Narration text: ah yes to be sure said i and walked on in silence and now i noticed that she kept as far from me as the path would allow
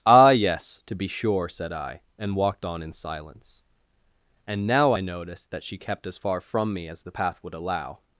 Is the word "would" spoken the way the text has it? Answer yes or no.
yes